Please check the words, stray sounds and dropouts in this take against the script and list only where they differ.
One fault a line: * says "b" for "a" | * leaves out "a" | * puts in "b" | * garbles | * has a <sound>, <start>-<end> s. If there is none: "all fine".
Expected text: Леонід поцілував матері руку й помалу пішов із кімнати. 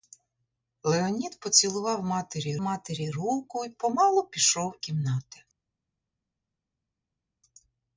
* puts in "матері"
* leaves out "із"